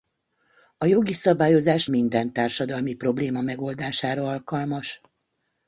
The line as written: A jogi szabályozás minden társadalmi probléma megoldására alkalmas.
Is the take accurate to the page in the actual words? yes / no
yes